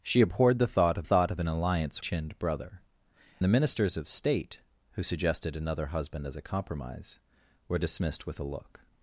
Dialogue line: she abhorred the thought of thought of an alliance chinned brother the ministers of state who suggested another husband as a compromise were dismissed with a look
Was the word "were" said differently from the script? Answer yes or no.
no